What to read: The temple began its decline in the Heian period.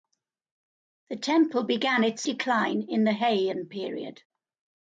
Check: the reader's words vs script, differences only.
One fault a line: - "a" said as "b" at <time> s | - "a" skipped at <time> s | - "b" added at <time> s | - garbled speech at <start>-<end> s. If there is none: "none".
none